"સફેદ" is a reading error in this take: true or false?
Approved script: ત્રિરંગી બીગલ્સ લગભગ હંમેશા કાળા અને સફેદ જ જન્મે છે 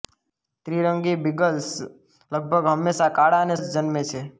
true